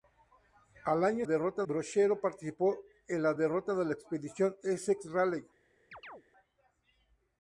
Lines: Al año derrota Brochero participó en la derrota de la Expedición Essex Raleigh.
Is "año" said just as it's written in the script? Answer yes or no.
yes